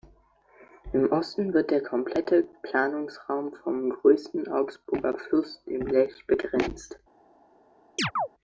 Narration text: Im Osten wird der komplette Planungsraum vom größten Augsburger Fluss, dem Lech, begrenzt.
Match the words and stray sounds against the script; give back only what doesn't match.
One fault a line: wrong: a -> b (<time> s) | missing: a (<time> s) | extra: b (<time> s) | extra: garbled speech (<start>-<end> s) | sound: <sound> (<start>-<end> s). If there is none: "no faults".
sound: chirp (8.0-8.3 s)